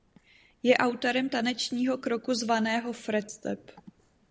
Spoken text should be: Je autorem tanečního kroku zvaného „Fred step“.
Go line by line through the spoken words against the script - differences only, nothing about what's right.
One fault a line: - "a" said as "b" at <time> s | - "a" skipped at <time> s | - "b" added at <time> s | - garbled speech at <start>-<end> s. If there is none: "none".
none